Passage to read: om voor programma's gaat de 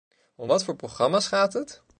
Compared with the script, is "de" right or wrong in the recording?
wrong